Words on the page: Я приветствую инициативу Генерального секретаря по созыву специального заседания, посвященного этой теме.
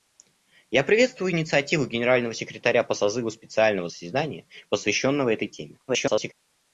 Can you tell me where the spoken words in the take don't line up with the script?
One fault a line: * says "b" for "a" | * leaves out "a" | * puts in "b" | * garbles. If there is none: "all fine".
* garbles